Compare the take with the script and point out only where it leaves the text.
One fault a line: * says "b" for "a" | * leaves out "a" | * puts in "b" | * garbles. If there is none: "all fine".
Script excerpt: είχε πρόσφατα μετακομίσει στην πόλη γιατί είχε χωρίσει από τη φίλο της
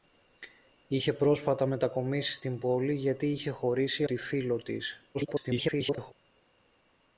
* leaves out "από"
* garbles